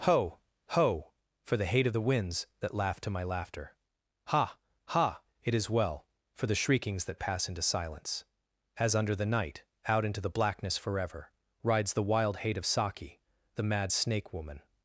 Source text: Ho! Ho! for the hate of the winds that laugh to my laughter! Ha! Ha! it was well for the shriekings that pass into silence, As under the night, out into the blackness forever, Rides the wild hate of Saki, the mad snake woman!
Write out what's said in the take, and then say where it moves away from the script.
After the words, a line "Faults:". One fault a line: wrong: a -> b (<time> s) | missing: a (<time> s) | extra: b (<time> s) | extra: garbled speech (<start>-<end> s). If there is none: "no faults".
Ho! Ho! for the hate of the winds that laugh to my laughter! Ha! Ha! it is well for the shriekings that pass into silence, As under the night, out into the blackness forever, Rides the wild hate of Saki, the mad snake woman!
Faults:
wrong: was -> is (5.5 s)